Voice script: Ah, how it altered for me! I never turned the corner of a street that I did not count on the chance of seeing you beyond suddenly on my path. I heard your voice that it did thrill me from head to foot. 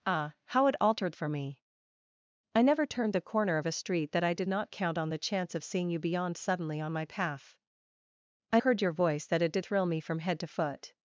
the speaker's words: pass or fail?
pass